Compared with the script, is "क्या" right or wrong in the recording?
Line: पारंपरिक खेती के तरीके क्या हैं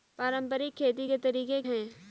wrong